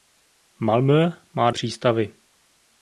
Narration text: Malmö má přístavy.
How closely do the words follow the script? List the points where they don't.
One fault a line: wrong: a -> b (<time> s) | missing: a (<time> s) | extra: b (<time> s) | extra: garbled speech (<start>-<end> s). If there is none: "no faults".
no faults